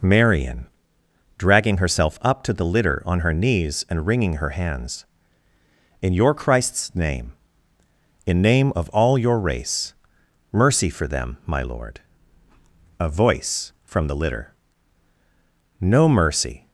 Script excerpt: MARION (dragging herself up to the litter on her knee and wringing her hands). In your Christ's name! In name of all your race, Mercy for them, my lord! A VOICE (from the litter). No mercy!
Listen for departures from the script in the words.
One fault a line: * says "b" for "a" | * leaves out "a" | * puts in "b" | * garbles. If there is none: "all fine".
* says "knees" for "knee"